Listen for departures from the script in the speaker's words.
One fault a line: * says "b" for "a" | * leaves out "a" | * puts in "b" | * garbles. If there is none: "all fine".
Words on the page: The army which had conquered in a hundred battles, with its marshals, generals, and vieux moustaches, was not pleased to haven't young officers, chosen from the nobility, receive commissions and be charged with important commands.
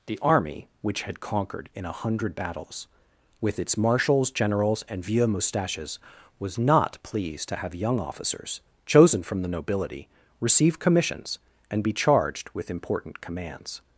* says "have" for "haven't"